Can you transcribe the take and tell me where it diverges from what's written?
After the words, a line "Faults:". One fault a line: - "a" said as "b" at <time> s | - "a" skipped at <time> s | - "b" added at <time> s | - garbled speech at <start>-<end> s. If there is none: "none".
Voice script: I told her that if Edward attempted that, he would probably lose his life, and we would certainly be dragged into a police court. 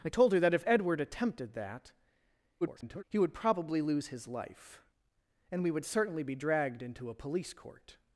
I told her that if Edward attempted that, [garbled] he would probably lose his life, and we would certainly be dragged into a police court.
Faults:
- garbled speech at 2.6-3.0 s